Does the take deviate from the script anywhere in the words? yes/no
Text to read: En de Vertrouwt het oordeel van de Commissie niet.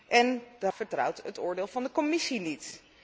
no